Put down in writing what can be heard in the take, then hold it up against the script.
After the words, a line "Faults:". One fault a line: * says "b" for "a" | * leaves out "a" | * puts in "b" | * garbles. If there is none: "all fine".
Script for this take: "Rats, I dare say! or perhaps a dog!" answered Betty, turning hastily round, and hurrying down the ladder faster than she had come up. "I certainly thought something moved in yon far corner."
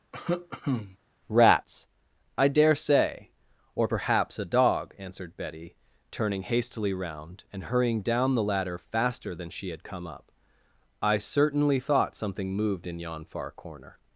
"Rats, I dare say! or perhaps a dog!" answered Betty, turning hastily round, and hurrying down the ladder faster than she had come up. "I certainly thought something moved in yon far corner."
Faults:
all fine